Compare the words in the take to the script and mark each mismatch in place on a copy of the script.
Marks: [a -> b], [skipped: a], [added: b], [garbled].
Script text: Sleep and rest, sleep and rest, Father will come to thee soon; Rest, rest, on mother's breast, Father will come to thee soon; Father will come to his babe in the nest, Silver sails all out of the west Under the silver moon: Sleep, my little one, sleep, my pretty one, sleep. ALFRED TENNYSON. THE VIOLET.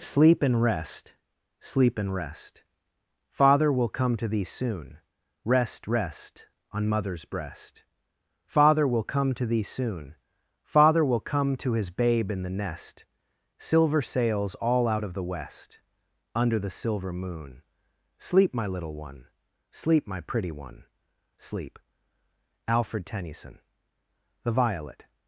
Sleep and rest, sleep and rest, Father will come to thee soon; Rest, rest, on mother's breast, Father will come to thee soon; Father will come to his babe in the nest, Silver sails all out of the west Under the silver moon: Sleep, my little one, sleep, my pretty one, sleep. ALFRED TENNYSON. THE VIOLET.